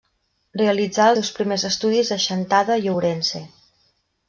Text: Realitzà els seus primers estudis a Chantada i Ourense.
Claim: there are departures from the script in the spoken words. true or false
true